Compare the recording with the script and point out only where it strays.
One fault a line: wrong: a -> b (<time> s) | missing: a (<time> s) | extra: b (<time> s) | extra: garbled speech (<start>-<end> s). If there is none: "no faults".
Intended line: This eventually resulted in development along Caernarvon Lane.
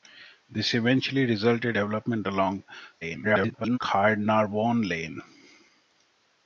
missing: in (1.8 s)
extra: garbled speech (3.0-3.8 s)